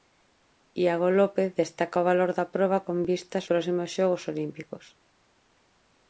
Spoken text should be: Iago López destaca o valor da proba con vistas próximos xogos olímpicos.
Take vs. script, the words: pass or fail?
pass